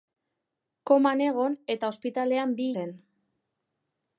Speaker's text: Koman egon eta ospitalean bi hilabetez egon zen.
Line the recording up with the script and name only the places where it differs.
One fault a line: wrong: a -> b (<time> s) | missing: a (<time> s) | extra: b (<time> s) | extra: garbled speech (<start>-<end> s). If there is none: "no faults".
missing: hilabetez egon (2.7 s)